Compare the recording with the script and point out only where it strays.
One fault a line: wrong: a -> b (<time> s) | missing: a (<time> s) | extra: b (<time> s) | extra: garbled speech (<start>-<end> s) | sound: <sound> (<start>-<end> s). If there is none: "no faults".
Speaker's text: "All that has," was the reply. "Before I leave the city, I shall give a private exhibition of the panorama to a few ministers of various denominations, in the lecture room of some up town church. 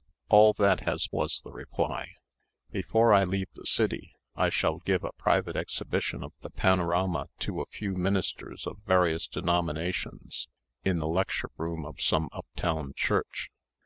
no faults